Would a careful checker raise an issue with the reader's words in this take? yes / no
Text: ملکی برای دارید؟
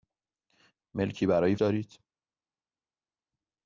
no